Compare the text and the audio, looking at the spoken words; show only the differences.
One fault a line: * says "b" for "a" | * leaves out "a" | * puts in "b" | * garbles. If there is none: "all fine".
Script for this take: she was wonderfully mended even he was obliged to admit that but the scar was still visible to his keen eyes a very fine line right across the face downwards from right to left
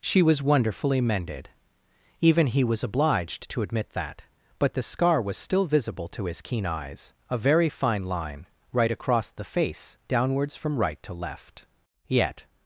* puts in "yet"